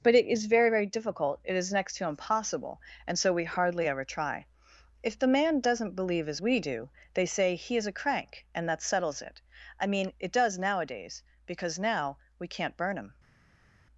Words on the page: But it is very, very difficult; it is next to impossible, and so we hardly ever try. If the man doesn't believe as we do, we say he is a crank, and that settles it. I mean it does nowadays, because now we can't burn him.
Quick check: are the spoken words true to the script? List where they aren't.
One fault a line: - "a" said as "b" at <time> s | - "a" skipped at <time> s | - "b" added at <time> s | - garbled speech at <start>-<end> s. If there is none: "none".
- "we" said as "they" at 7.1 s